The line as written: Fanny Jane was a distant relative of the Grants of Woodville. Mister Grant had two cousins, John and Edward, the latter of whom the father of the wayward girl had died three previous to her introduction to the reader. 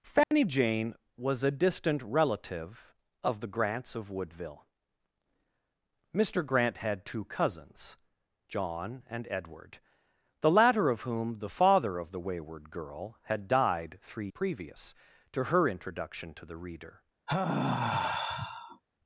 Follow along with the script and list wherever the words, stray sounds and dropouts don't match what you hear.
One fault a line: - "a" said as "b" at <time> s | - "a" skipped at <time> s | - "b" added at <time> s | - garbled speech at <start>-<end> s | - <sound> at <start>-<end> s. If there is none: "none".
- dropout at 0.2-0.3 s
- sigh at 17.3-18.8 s